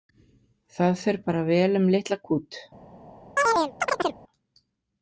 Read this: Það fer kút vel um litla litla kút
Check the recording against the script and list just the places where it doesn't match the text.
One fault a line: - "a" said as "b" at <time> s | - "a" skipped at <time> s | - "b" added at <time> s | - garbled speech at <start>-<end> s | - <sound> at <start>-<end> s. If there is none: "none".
- "kút" said as "bara" at 1.3 s
- "litla" skipped at 2.2 s
- chirp at 3.4-4.2 s